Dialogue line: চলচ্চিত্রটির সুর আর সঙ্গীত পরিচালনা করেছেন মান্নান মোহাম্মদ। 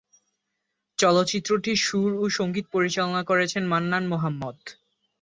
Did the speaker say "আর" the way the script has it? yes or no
no